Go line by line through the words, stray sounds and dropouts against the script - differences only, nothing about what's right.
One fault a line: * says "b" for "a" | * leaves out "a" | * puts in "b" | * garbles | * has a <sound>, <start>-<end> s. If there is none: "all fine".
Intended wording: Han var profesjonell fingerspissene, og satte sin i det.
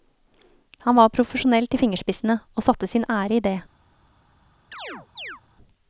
* puts in "til"
* puts in "ære"
* has a chirp, 4.7-5.4 s